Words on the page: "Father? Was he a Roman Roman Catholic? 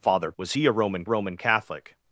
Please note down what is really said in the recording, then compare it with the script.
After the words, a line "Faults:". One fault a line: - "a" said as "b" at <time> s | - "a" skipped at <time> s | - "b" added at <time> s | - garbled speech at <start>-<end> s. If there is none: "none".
"Father? Was he a Roman Roman Catholic?
Faults:
none